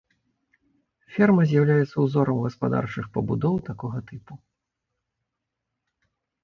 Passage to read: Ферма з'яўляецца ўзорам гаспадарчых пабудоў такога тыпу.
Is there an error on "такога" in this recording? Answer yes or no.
no